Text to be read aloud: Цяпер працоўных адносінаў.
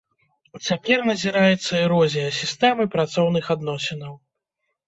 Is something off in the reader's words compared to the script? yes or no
yes